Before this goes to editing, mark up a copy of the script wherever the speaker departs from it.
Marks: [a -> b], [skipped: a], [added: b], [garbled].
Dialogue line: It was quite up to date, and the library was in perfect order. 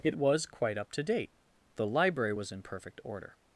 It was quite up to date, [skipped: and] the library was in perfect order.